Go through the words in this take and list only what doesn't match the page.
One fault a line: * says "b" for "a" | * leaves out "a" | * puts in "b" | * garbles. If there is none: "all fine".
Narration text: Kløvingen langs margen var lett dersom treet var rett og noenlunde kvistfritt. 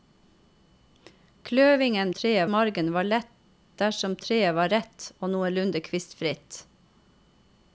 * says "treet" for "langs"